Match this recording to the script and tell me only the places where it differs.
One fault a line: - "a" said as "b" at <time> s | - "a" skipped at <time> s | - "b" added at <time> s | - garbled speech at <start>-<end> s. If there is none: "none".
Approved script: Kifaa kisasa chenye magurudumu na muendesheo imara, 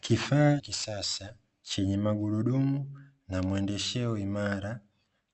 none